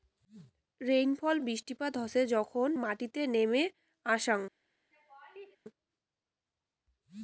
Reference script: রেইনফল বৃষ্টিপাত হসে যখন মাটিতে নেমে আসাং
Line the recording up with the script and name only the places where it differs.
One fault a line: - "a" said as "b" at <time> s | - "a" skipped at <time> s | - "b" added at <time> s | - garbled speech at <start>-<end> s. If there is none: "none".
none